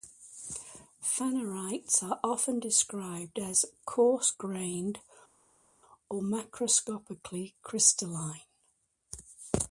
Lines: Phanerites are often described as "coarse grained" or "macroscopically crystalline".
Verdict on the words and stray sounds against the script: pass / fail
pass